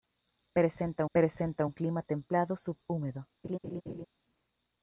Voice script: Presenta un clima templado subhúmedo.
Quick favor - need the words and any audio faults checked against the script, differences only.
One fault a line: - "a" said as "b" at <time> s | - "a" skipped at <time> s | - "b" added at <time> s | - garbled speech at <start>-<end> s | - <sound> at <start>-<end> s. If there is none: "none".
- "presenta" added at 1.1 s
- laugh at 3.4-4.1 s